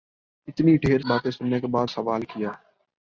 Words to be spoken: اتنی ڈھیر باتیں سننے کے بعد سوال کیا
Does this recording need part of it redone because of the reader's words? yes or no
no